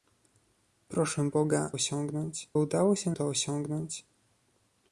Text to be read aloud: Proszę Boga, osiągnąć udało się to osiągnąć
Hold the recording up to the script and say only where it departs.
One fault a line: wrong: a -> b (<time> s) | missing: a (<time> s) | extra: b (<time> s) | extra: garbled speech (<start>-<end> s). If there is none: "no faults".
no faults